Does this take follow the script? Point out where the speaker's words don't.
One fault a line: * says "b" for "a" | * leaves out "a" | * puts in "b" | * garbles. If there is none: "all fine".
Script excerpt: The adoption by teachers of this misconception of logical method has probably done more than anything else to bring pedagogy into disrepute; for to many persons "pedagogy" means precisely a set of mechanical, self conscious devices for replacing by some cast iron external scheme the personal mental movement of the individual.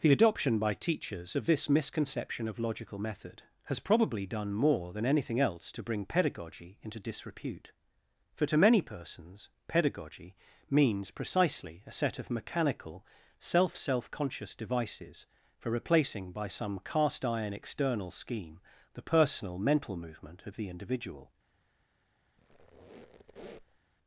* puts in "self"